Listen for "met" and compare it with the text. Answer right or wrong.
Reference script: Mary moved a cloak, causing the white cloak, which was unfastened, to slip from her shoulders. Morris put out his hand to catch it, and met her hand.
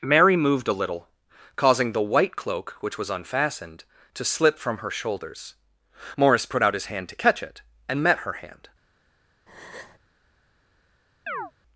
right